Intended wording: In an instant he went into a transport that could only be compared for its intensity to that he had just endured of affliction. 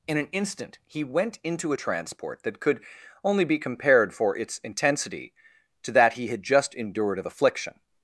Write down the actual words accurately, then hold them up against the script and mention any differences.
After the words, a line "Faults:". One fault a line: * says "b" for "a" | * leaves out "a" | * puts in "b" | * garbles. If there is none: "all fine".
In an instant he went into a transport that could only be compared for its intensity to that he had just endured of affliction.
Faults:
all fine